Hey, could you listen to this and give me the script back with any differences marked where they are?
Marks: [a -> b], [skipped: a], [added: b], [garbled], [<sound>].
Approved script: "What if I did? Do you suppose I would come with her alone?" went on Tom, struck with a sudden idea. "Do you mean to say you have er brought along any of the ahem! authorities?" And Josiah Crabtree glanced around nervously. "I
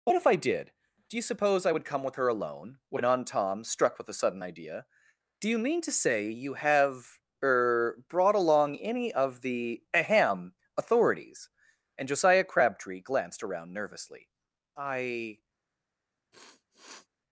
"What if I did? Do you suppose I would come with her alone?" went on Tom, struck with a sudden idea. "Do you mean to say you have er brought along any of the ahem! authorities?" And Josiah Crabtree glanced around nervously. "I [sniff]